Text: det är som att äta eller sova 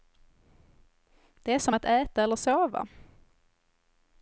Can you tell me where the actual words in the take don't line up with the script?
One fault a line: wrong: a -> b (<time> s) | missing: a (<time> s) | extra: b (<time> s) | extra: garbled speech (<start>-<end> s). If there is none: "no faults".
no faults